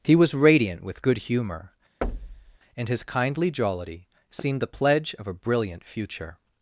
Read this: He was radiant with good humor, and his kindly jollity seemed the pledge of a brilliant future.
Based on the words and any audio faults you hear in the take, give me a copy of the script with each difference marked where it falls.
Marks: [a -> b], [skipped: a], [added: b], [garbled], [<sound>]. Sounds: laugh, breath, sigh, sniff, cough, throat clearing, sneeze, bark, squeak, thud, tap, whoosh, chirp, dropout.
He was radiant with good humor, [thud] and his kindly jollity seemed the pledge of a brilliant future.